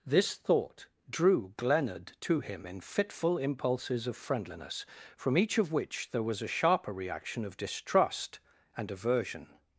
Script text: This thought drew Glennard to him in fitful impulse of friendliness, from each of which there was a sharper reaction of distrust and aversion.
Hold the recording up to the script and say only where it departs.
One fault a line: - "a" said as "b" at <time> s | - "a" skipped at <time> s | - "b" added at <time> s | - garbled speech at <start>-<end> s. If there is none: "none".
- "impulse" said as "impulses" at 3.4 s